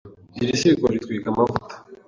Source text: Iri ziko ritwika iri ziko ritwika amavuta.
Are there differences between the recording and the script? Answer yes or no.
yes